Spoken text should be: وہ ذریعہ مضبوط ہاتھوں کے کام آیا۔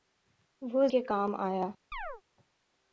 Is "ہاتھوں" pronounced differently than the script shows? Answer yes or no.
yes